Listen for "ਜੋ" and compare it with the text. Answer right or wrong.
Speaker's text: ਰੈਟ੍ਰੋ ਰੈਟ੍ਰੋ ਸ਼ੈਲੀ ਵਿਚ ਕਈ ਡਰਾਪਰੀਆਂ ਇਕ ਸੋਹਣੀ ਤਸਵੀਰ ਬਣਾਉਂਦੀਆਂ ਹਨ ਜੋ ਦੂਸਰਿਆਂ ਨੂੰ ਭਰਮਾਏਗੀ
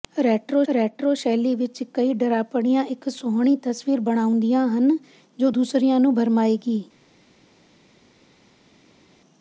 right